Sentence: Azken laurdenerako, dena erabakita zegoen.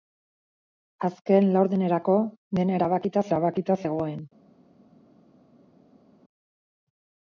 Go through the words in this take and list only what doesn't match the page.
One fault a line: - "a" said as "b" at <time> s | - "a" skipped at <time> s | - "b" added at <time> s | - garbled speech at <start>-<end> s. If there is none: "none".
- "erabakita" added at 3.3 s